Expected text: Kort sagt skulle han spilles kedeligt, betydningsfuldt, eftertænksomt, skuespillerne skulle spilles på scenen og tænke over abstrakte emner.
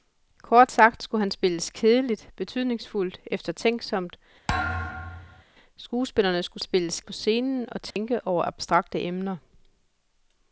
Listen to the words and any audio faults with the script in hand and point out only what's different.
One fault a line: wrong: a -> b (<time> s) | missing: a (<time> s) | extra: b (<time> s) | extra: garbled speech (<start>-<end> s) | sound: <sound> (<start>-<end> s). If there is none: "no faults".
sound: thud (4.5-5.4 s)
sound: dropout (7.9-8.0 s)